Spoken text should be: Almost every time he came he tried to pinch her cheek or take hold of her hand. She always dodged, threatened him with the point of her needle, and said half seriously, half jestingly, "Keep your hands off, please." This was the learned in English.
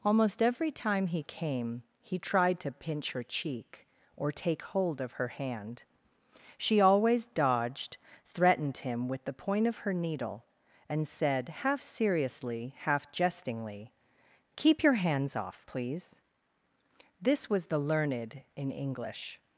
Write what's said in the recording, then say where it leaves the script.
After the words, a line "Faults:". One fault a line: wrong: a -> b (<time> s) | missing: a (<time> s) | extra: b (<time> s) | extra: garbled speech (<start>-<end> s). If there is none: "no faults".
Almost every time he came he tried to pinch her cheek or take hold of her hand. She always dodged, threatened him with the point of her needle, and said half seriously, half jestingly, "Keep your hands off, please." This was the learned in English.
Faults:
no faults